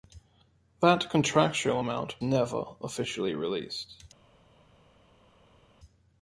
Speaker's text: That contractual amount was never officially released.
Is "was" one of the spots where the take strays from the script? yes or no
yes